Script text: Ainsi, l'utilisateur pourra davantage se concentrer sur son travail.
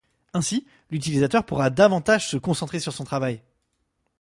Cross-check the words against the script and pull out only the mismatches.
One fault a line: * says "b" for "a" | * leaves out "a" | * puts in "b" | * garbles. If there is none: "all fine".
all fine